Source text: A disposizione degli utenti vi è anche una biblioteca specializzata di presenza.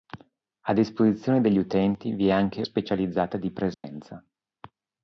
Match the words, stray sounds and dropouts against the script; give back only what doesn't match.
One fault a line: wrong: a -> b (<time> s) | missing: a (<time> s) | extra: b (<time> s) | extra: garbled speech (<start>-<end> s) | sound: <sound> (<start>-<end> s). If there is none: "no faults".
missing: una biblioteca (2.6 s)
sound: dropout (3.7-3.8 s)